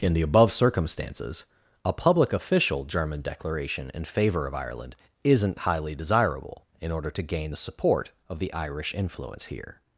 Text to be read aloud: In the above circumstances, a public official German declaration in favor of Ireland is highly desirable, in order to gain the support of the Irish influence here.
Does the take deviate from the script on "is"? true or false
true